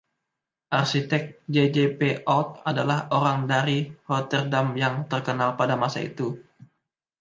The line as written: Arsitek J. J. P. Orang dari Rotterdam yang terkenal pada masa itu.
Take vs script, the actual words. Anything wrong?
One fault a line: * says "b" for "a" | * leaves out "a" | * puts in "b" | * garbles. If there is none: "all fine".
* puts in "Oud adalah"